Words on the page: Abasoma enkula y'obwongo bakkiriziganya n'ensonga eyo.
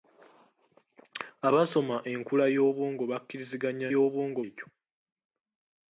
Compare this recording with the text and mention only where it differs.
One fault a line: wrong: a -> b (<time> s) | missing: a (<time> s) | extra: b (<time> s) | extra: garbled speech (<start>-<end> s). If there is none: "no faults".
wrong: n'ensonga -> y'obwongo (3.9 s)